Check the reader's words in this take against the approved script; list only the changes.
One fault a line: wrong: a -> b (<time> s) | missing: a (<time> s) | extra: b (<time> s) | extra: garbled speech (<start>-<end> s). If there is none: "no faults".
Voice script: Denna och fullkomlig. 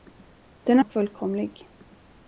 no faults